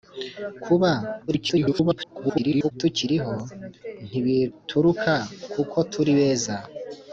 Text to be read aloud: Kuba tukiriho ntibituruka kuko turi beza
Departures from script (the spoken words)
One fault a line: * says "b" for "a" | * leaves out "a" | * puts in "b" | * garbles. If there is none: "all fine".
* garbles